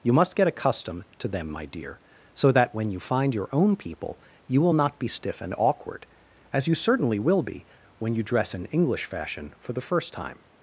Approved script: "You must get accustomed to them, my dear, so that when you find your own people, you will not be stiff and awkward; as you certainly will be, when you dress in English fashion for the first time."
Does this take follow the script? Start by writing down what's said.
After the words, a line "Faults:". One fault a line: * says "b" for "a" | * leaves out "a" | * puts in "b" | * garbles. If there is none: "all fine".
"You must get accustomed to them, my dear, so that when you find your own people, you will not be stiff and awkward; as you certainly will be, when you dress in English fashion for the first time."
Faults:
all fine